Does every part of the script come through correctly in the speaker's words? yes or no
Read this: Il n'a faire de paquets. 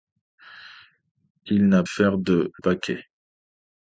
yes